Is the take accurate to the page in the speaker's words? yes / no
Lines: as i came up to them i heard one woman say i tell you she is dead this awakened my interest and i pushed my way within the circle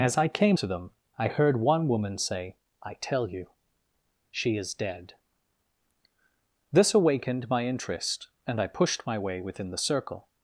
no